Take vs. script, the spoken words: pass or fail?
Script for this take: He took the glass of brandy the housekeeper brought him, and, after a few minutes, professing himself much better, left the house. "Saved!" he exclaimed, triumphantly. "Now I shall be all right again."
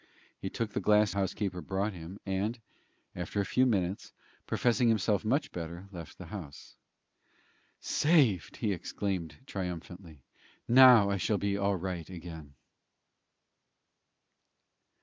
fail